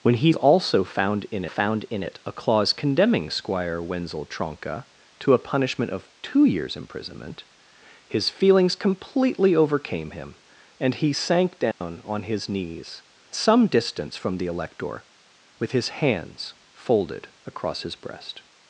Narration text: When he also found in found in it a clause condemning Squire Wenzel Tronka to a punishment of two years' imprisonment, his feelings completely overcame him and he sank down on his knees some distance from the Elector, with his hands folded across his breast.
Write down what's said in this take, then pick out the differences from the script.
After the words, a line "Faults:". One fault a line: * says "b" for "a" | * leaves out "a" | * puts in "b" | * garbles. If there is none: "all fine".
When he also found in found in it a clause condemning Squire Wenzel Tronka to a punishment of two years' imprisonment, his feelings completely overcame him and he sank down on his knees some distance from the Elector, with his hands folded across his breast.
Faults:
all fine